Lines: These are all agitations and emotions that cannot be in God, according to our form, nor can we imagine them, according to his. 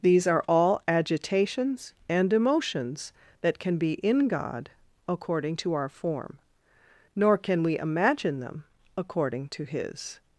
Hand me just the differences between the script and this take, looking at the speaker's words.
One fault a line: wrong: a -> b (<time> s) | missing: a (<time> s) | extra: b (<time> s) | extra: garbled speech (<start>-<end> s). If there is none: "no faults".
wrong: cannot -> can (3.6 s)